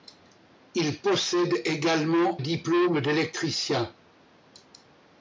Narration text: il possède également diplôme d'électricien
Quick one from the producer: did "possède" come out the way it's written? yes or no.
yes